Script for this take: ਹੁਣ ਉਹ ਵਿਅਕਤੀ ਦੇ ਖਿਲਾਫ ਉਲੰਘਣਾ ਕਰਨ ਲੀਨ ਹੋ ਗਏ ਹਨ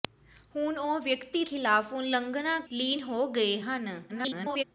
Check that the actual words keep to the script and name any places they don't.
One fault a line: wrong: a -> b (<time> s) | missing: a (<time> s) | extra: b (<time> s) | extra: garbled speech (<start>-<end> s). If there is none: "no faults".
missing: ਦੇ (1.4 s)
missing: ਕਰਨ (2.6 s)
extra: garbled speech (4.1-4.6 s)